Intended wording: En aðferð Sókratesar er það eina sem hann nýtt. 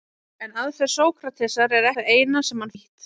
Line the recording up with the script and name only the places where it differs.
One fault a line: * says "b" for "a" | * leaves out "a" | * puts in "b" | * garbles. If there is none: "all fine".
all fine